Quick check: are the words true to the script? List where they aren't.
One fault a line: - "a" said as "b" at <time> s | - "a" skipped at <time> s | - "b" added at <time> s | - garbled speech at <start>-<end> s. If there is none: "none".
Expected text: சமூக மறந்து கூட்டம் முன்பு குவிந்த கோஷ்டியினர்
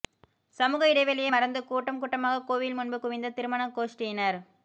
- "இடைவெளியை" added at 0.9 s
- "கூட்டமாக கோவில்" added at 2.0 s
- "திருமண" added at 3.3 s